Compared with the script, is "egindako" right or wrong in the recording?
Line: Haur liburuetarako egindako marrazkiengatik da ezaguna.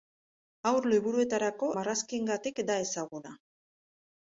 wrong